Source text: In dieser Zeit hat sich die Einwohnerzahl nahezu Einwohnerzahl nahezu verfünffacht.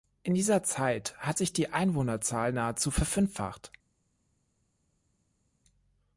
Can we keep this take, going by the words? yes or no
no